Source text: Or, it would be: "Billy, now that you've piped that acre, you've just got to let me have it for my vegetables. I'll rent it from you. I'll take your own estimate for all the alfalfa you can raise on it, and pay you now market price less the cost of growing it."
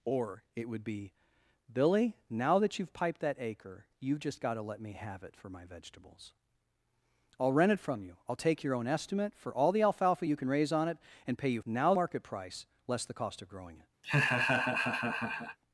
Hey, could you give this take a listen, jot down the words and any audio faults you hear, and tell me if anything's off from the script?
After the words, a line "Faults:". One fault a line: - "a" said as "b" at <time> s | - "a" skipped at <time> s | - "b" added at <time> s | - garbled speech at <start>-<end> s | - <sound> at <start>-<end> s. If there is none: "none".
Or, it would be: "Billy, now that you've piped that acre, you've just got to let me have it for my vegetables. I'll rent it from you. I'll take your own estimate for all the alfalfa you can raise on it, and pay you now market price less the cost of growing it."
Faults:
- laugh at 14.0-15.6 s